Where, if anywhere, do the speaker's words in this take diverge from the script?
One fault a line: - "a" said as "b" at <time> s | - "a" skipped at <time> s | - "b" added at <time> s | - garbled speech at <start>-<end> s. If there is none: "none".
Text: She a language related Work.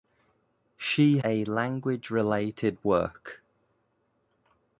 none